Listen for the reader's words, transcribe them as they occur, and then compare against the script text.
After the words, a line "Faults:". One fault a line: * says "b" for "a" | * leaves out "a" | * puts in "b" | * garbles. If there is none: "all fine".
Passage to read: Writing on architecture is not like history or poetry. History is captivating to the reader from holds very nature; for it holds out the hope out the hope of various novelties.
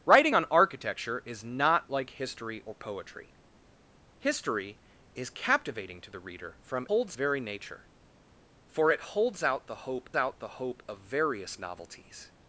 Writing on architecture is not like history or poetry. History is captivating to the reader from holds very nature; for it holds out the hope out the hope of various novelties.
Faults:
all fine